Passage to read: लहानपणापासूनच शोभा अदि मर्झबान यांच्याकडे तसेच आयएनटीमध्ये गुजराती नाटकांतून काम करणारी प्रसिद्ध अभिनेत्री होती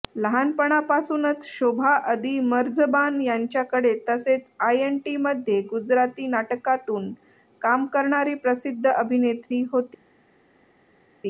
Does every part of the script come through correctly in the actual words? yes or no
yes